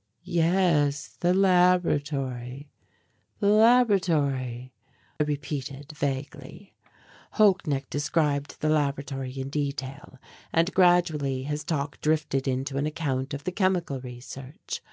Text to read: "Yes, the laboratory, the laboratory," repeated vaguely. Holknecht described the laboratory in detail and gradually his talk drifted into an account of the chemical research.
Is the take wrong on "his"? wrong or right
right